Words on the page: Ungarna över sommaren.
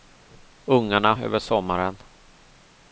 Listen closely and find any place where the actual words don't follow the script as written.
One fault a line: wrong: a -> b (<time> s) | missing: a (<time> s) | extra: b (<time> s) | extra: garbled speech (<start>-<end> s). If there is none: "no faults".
no faults